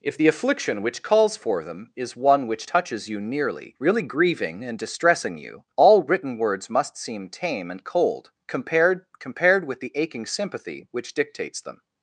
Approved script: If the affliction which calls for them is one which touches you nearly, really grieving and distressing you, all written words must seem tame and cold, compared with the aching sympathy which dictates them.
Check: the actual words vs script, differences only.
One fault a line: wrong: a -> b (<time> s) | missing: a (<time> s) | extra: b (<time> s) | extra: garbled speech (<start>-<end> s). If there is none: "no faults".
extra: compared (9.2 s)